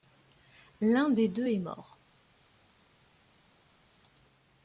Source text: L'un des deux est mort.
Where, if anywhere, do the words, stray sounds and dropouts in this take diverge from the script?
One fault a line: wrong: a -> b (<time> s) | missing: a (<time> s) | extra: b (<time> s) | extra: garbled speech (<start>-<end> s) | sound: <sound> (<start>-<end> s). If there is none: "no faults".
no faults